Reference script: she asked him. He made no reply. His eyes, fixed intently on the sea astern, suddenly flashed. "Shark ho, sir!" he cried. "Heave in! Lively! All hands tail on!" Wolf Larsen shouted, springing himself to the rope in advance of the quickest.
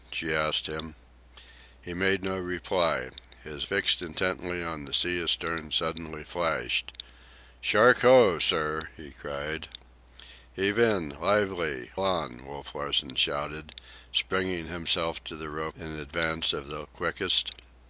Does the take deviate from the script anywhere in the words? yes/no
yes